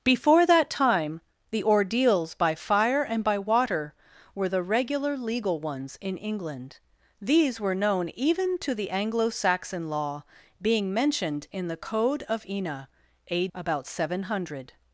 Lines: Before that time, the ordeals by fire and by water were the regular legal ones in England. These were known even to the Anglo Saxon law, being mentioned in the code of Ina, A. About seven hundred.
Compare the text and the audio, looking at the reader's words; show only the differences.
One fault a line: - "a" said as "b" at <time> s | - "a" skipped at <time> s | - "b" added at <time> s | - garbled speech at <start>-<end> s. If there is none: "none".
none